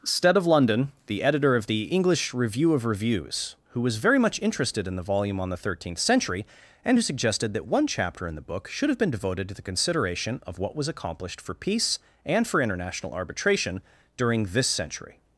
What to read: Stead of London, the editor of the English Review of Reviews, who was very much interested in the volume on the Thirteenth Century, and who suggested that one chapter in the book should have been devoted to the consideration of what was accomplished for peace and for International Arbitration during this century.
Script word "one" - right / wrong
right